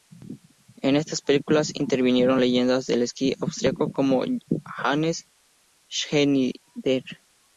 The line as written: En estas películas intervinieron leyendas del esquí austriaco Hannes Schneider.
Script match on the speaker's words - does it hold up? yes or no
no